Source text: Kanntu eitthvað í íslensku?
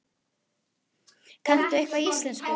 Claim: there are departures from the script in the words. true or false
false